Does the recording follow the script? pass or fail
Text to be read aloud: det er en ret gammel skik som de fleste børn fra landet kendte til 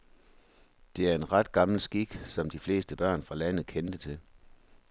pass